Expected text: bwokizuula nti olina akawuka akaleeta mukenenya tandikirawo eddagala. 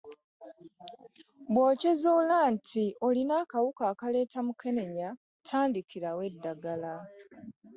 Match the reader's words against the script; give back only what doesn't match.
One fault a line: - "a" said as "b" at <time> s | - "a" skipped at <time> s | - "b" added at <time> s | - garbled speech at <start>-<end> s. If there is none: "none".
none